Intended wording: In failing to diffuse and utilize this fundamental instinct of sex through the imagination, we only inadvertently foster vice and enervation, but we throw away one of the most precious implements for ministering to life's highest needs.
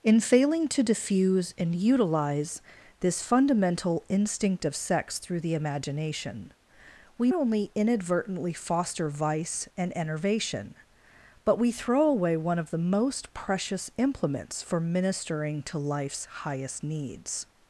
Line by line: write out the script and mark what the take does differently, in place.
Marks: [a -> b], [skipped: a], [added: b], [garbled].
In failing to diffuse and utilize this fundamental instinct of sex through the imagination, we only inadvertently foster vice and enervation, but we throw away one of the most precious implements for ministering to life's highest needs.